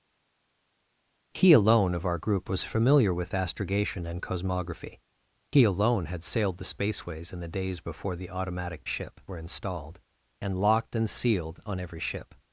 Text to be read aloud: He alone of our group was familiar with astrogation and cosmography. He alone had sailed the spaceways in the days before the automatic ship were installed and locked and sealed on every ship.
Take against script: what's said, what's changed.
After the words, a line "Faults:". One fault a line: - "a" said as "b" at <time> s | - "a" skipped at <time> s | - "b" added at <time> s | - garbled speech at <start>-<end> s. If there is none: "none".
He alone of our group was familiar with astrogation and cosmography. He alone had sailed the spaceways in the days before the automatic ship were installed and locked and sealed on every ship.
Faults:
none